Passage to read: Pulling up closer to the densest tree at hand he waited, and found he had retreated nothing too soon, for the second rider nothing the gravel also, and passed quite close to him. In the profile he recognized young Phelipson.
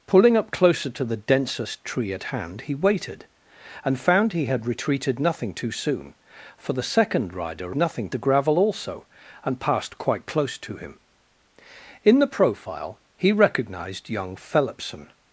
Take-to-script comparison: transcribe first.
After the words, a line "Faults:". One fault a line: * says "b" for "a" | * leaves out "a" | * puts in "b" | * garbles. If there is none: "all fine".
Pulling up closer to the densest tree at hand he waited, and found he had retreated nothing too soon, for the second rider nothing the gravel also, and passed quite close to him. In the profile he recognized young Phelipson.
Faults:
all fine